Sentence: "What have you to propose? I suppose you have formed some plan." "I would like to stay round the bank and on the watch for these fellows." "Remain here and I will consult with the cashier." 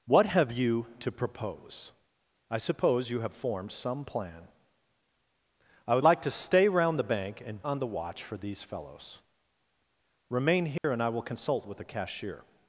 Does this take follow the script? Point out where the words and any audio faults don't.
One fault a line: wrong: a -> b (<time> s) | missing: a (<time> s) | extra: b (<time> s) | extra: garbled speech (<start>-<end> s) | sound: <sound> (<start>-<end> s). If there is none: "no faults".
sound: dropout (10.8-10.8 s)